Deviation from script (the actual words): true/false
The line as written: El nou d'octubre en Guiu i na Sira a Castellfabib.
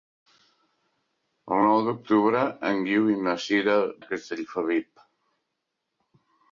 false